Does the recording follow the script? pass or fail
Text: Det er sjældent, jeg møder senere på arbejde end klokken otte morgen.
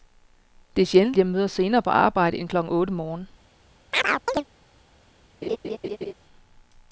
pass